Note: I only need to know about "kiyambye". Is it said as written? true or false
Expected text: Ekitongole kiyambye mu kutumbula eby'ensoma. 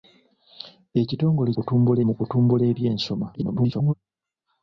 false